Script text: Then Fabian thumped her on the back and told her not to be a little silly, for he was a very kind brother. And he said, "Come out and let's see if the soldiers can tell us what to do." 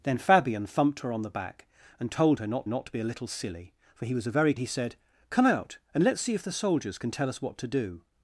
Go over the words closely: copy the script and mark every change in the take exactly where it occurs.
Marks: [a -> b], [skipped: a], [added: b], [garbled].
Then Fabian thumped her on the back and told her not [added: not] to be a little silly, for he was a very [skipped: kind brother. And] he said, "Come out and let's see if the soldiers can tell us what to do."